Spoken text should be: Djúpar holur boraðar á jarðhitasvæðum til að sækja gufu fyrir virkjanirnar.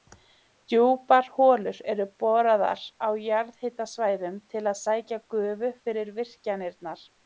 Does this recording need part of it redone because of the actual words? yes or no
yes